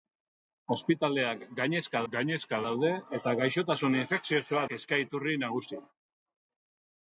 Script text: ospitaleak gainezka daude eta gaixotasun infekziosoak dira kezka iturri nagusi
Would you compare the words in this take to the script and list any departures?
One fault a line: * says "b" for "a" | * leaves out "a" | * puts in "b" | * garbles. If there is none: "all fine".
* puts in "gainezka"
* leaves out "dira"